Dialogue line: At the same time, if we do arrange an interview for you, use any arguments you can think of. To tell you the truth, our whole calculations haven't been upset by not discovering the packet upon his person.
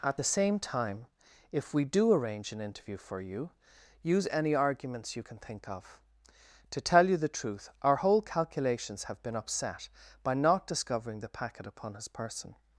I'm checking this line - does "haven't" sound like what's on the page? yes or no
no